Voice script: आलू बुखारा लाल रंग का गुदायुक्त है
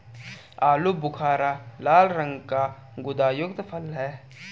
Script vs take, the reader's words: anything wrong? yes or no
yes